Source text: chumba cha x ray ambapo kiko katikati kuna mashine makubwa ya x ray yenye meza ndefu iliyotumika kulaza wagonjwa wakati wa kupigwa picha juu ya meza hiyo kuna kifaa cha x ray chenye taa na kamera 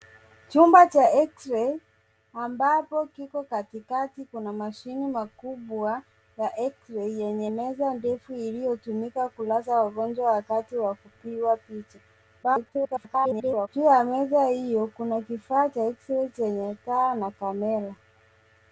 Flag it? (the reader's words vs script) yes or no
yes